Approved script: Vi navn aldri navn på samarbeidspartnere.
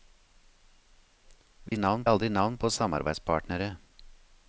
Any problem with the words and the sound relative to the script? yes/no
yes